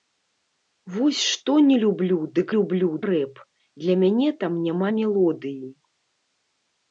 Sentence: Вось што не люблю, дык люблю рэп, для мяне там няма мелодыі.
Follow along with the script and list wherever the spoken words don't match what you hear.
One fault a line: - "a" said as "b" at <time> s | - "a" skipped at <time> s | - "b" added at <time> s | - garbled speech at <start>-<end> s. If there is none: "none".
none